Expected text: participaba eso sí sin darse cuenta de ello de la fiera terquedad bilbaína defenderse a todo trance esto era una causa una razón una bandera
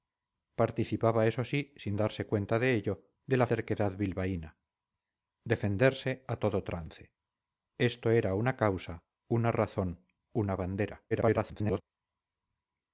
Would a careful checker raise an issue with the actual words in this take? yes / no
yes